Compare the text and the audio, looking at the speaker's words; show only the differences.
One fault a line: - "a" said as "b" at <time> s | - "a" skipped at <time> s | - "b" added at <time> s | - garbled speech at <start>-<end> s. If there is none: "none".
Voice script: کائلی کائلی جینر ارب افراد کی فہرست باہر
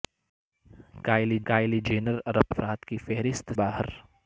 none